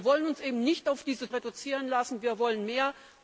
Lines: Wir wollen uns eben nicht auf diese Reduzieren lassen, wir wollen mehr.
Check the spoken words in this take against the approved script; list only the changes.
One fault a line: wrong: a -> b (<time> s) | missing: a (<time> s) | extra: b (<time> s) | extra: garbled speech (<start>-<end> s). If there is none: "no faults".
no faults